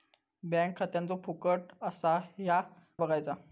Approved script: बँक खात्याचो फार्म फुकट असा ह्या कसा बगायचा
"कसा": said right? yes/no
no